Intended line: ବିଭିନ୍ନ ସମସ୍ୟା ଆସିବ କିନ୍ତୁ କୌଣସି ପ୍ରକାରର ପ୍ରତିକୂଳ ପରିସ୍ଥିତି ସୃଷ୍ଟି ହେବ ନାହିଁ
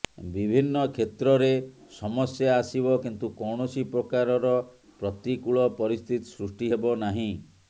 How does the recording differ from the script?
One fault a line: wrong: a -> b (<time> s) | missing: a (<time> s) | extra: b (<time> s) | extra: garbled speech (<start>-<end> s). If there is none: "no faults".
extra: କ୍ଷେତ୍ରରେ (0.9 s)